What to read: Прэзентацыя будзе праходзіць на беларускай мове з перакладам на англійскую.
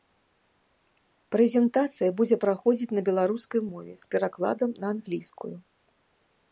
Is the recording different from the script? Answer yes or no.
no